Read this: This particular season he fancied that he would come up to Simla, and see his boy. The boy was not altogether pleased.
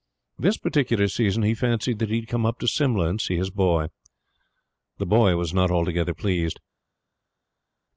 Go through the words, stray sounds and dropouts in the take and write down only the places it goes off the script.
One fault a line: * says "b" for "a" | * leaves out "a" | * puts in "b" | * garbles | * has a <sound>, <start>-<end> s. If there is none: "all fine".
all fine